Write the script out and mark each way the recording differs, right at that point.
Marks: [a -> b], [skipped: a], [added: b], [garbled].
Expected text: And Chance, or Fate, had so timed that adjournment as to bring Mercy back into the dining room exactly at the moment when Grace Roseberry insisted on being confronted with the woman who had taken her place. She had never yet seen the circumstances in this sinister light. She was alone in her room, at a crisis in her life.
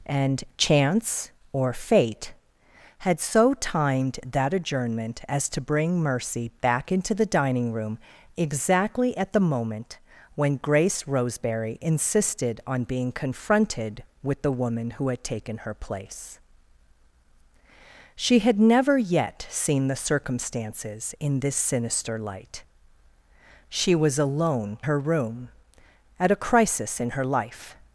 And Chance, or Fate, had so timed that adjournment as to bring Mercy back into the dining room exactly at the moment when Grace Roseberry insisted on being confronted with the woman who had taken her place. She had never yet seen the circumstances in this sinister light. She was alone [skipped: in] her room, at a crisis in her life.